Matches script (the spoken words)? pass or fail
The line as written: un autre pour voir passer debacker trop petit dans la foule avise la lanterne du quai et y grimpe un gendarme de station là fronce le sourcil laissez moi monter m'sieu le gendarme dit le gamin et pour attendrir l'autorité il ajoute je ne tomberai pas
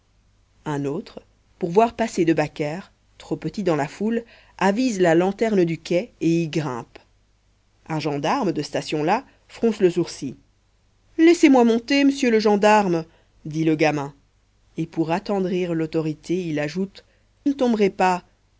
fail